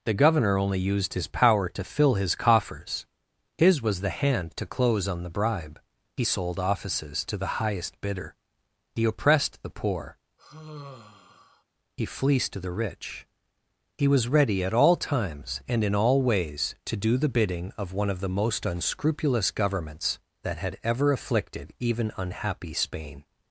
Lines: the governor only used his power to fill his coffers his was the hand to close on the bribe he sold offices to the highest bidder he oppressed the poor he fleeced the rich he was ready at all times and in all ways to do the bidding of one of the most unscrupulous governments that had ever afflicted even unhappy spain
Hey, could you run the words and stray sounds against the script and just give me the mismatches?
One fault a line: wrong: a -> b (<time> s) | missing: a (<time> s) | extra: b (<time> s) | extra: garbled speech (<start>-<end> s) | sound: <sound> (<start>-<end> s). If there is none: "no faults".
sound: sigh (10.4-11.6 s)